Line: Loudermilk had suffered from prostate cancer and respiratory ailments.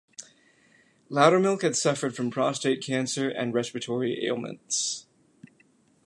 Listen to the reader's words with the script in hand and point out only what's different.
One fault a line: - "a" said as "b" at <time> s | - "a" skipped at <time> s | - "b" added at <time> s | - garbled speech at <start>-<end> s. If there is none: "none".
none